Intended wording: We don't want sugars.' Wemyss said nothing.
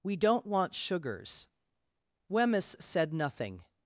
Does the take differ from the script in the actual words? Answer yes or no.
no